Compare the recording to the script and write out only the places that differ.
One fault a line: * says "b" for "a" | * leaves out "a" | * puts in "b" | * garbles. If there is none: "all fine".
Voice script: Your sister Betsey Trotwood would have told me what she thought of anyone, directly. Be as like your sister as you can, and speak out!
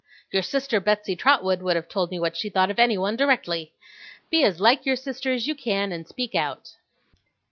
all fine